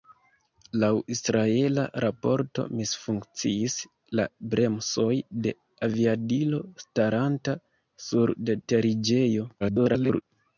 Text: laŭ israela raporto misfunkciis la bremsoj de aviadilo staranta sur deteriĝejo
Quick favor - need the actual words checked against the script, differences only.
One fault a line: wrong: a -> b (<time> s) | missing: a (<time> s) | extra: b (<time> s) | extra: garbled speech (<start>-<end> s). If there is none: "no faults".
extra: garbled speech (9.6-10.2 s)